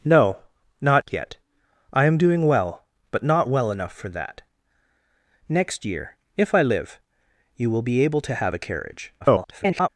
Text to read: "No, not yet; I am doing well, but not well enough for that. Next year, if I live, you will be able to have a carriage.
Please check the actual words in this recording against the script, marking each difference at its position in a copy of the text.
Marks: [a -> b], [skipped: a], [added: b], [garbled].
"No, not yet; I am doing well, but not well enough for that. Next year, if I live, you will be able to have a carriage. [garbled]